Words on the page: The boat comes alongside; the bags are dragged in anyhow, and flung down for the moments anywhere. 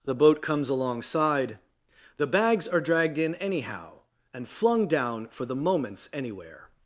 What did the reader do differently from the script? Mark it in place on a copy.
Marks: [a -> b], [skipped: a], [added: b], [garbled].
The boat comes alongside; the bags are dragged in anyhow, and flung down for the moments anywhere.